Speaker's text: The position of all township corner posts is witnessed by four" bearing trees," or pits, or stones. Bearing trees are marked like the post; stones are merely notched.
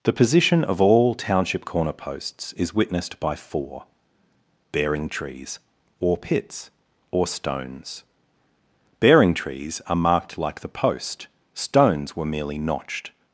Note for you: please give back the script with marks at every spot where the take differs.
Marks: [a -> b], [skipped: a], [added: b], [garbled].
The position of all township corner posts is witnessed by four" bearing trees," or pits, or stones. Bearing trees are marked like the post; stones [are -> were] merely notched.